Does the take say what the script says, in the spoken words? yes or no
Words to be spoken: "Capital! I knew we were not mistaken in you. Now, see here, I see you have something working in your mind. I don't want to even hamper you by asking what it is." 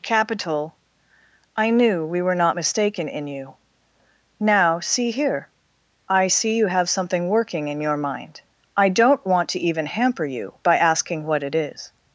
yes